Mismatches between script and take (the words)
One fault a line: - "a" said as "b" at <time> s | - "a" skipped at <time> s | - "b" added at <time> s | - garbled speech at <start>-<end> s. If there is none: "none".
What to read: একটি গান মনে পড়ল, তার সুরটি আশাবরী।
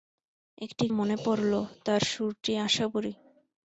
- "গান" skipped at 0.8 s